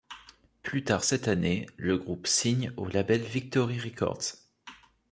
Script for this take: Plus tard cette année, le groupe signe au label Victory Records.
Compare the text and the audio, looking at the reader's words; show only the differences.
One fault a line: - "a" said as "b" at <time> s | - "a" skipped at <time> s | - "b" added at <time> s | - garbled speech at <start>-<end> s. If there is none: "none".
none